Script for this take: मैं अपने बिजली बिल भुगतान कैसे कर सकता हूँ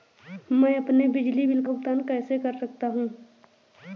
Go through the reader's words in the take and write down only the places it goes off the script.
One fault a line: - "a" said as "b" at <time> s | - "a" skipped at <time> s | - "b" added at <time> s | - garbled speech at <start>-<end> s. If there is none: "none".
none